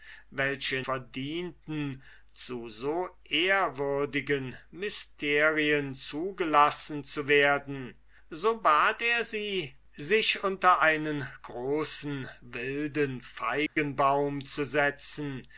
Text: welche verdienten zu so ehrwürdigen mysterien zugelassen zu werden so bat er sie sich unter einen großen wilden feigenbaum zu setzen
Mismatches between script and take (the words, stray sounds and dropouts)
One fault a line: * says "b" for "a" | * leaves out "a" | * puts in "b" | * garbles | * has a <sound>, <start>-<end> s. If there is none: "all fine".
* has a dropout, 13.7-13.8 s